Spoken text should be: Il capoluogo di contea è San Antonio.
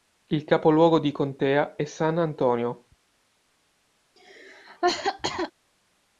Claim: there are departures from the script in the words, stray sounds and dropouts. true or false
true